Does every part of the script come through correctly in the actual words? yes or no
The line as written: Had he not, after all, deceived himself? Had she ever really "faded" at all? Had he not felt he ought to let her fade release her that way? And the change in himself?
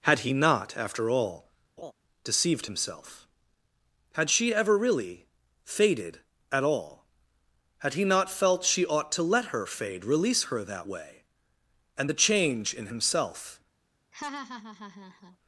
no